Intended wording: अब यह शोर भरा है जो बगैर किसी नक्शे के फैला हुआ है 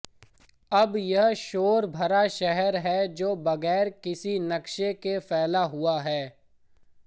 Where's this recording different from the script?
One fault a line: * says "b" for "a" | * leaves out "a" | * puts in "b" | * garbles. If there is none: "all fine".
* puts in "शहर"